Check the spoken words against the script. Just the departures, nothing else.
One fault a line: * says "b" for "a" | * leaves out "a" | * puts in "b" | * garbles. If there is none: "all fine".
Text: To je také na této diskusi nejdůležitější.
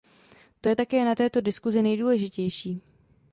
all fine